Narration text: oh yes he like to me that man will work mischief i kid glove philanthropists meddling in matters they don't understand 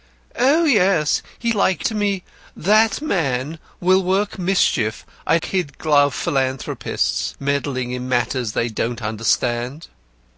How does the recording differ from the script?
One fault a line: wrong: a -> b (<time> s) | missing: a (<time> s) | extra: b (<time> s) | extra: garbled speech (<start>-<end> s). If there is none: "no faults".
no faults